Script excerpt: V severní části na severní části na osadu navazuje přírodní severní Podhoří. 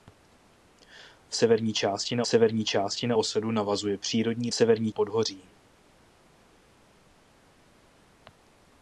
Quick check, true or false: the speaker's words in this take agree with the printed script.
true